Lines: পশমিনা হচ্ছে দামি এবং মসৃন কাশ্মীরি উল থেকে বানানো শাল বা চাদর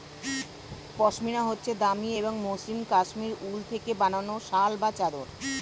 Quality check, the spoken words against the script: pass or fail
pass